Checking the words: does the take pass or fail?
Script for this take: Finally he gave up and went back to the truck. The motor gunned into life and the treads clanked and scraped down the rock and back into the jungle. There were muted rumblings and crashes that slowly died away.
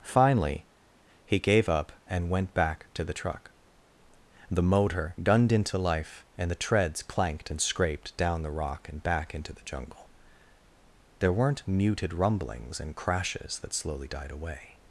fail